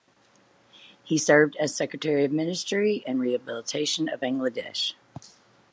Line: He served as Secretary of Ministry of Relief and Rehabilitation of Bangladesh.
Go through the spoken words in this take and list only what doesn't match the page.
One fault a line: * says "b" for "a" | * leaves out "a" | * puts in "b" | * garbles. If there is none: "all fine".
* leaves out "of Relief"